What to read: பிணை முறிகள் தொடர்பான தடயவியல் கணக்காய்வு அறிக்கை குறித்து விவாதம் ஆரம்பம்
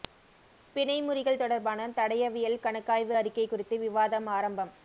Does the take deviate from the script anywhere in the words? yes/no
no